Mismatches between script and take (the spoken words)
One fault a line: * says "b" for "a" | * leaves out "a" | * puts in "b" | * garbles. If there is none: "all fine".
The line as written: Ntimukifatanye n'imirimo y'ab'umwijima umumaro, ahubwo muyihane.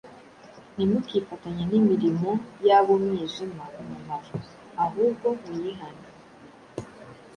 all fine